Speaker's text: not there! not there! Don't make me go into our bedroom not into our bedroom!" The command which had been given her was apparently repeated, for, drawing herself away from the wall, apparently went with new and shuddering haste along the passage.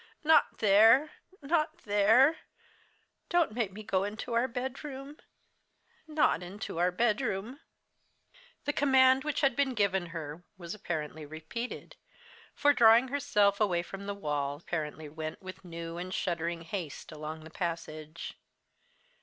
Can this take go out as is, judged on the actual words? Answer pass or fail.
pass